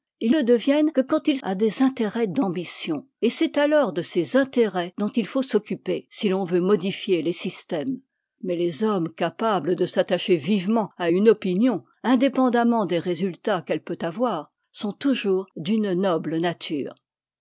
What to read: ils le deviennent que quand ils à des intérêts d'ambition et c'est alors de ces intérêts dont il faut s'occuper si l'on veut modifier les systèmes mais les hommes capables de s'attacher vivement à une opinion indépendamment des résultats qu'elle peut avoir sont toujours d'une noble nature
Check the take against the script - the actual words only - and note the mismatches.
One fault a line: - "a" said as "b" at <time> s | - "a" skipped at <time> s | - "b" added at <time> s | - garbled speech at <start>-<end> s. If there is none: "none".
none